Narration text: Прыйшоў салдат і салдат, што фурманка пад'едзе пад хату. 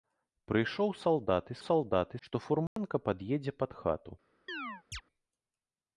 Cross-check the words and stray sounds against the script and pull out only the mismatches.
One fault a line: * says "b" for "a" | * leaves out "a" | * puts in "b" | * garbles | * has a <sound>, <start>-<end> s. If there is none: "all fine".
* has a dropout, 2.7-2.8 s
* has a chirp, 4.5-5.0 s